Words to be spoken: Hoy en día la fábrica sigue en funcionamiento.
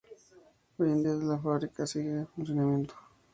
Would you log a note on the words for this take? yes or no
no